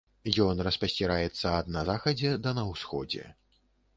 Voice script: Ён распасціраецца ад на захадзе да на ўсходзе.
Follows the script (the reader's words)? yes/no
yes